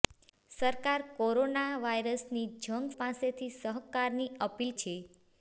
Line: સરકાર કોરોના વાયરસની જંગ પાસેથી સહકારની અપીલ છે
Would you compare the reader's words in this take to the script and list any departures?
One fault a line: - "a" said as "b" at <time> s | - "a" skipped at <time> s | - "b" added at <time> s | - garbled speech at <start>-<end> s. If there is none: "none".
none